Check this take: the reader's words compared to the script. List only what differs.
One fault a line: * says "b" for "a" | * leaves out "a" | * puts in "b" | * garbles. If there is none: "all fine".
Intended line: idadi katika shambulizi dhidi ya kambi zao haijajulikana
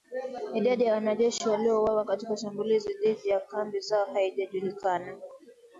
* puts in "ya wanajeshi waliouawa"